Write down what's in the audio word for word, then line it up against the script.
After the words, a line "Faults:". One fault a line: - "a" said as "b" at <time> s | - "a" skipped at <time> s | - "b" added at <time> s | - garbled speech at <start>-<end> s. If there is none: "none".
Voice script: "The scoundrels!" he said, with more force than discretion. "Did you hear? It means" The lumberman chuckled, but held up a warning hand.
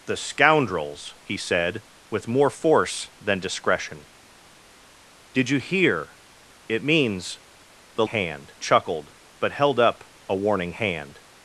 "The scoundrels!" he said, with more force than discretion. "Did you hear? It means" The hand chuckled, but held up a warning hand.
Faults:
- "lumberman" said as "hand" at 8.1 s